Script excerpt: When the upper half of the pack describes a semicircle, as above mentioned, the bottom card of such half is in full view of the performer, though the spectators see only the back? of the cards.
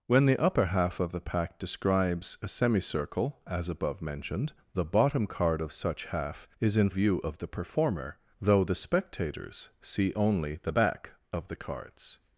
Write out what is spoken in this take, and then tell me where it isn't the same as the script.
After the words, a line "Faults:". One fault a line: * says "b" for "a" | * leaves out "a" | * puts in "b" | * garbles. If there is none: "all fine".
When the upper half of the pack describes a semicircle, as above mentioned, the bottom card of such half is in view of the performer, though the spectators see only the back? of the cards.
Faults:
* leaves out "full"